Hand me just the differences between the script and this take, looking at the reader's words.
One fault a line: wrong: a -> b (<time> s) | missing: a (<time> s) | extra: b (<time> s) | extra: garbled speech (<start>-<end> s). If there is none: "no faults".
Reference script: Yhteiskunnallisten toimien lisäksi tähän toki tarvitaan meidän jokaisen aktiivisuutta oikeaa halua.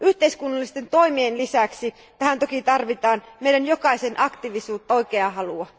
no faults